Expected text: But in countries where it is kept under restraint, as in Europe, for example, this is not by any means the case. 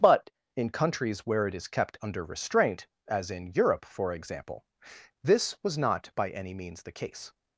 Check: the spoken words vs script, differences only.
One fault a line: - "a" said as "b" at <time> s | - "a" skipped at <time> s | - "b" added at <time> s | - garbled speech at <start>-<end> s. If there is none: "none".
- "is" said as "was" at 5.6 s